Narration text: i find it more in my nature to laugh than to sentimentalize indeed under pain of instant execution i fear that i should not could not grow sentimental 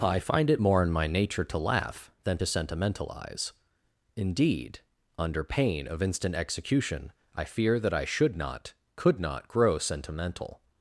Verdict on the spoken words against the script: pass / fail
pass